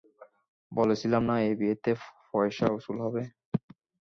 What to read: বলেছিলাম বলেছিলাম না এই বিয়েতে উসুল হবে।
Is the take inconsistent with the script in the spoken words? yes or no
yes